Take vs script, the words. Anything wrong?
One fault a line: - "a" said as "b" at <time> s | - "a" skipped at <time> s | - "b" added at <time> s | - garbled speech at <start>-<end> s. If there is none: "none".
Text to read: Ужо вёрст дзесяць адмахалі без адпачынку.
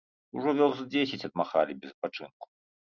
none